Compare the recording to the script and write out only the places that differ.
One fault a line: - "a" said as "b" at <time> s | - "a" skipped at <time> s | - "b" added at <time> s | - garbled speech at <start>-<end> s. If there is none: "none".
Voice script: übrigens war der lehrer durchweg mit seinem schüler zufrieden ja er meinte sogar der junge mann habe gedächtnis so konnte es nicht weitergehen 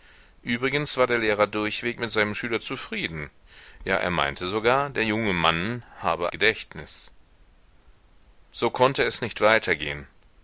none